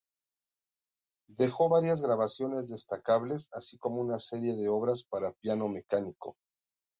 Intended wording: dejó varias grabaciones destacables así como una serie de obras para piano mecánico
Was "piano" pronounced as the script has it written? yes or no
yes